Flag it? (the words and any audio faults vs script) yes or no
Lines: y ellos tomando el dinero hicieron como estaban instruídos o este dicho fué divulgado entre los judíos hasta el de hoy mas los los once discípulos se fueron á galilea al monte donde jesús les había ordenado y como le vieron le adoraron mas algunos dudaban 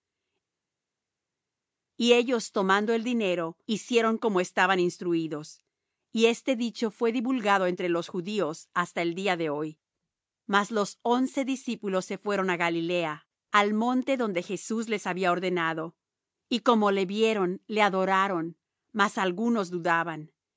yes